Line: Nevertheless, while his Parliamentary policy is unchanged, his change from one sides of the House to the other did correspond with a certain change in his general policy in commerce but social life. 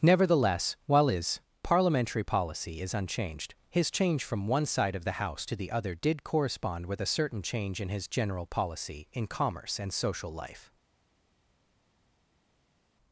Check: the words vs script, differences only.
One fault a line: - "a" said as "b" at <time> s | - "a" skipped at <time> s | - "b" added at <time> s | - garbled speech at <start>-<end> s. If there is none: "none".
- "sides" said as "side" at 4.7 s
- "but" said as "and" at 9.8 s